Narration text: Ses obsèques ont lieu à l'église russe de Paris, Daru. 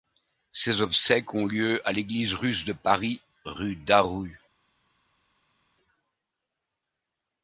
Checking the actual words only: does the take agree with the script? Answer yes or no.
no